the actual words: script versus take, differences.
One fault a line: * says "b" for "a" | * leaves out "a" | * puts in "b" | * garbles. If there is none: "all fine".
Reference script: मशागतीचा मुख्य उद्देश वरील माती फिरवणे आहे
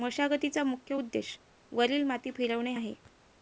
all fine